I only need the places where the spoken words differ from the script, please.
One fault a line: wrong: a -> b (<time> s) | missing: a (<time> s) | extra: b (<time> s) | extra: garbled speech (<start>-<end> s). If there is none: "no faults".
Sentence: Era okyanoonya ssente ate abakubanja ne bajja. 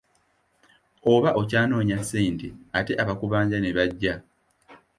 wrong: Era -> Oba (1.1 s)